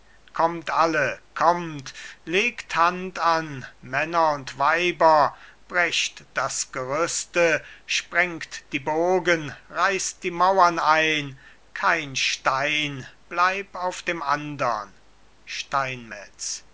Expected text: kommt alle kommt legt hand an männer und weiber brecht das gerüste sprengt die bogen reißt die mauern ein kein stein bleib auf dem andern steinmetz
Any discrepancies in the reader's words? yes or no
no